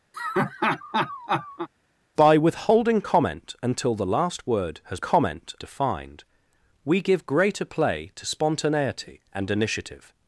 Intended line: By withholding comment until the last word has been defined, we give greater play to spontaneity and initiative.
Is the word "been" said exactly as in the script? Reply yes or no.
no